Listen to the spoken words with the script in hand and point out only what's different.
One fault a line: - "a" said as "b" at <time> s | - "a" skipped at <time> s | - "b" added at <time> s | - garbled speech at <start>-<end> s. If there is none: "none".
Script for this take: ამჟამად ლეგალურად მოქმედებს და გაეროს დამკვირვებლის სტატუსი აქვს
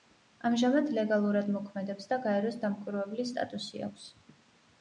none